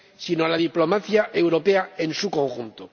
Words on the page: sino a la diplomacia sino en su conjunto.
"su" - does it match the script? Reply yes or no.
yes